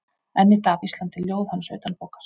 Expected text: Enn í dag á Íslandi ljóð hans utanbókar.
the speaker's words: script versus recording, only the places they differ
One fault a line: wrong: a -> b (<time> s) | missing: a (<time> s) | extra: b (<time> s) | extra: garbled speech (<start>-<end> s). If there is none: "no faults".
no faults